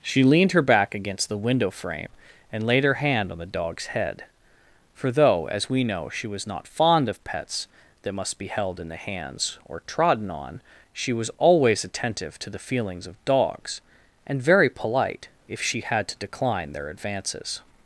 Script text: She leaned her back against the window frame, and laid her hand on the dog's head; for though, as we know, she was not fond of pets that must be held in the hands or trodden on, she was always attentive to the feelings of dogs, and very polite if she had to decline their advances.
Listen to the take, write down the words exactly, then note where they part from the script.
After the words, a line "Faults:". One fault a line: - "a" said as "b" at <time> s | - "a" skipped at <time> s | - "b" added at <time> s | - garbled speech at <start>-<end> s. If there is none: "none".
She leaned her back against the window frame, and laid her hand on the dog's head; for though, as we know, she was not fond of pets that must be held in the hands or trodden on, she was always attentive to the feelings of dogs, and very polite if she had to decline their advances.
Faults:
none